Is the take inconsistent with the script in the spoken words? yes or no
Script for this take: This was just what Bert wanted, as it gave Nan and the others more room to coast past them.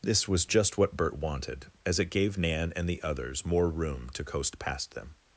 no